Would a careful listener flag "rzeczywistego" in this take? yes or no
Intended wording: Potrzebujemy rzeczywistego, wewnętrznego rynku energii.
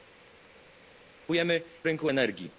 yes